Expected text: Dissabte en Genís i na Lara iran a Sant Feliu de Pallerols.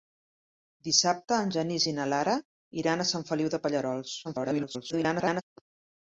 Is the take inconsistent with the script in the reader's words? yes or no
yes